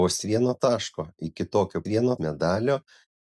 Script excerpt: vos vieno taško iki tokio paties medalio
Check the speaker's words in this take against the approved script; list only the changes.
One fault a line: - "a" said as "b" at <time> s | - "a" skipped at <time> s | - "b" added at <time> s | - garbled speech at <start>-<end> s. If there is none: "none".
- "paties" said as "vieno" at 1.9 s